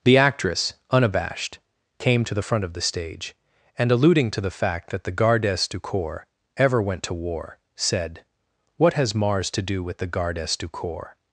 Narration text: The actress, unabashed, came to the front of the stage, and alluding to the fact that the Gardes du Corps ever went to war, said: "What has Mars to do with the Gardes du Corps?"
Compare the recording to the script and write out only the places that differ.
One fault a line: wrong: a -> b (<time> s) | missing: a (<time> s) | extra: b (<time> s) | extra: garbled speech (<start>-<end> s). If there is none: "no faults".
no faults